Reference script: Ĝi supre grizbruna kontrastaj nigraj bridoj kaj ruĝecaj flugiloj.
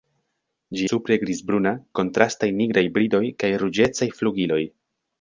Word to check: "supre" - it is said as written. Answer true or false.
true